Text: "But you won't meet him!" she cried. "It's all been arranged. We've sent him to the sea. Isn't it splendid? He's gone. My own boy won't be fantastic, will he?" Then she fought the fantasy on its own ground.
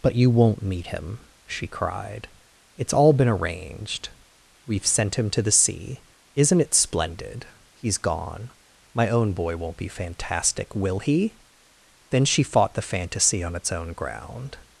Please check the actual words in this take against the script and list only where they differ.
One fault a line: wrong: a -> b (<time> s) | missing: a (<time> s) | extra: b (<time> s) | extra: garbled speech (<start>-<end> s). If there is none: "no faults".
no faults